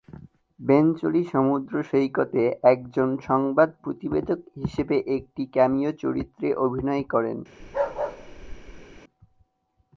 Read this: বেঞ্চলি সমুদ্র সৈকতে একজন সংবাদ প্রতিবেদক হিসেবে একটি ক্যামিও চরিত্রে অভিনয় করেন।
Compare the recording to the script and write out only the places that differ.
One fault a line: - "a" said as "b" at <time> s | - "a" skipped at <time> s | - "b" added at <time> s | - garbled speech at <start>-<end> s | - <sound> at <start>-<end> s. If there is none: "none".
- bark at 7.6-9.0 s